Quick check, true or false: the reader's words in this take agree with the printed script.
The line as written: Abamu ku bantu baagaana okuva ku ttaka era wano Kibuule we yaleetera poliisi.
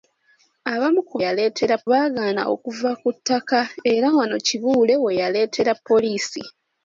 false